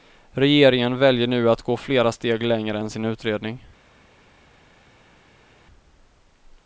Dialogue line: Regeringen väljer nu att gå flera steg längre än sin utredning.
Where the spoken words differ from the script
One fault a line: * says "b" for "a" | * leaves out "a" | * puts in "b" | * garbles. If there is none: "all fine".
all fine